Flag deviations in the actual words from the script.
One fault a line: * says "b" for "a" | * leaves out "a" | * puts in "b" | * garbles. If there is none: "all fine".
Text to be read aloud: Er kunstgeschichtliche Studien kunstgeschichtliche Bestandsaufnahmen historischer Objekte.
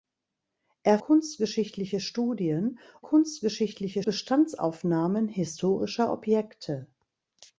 all fine